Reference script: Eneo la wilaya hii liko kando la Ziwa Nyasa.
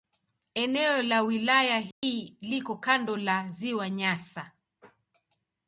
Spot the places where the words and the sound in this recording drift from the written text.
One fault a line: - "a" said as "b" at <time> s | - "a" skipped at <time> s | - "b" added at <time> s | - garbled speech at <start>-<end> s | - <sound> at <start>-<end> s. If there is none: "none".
- dropout at 1.9-2.0 s